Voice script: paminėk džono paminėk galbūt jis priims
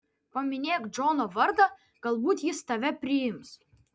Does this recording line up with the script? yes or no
no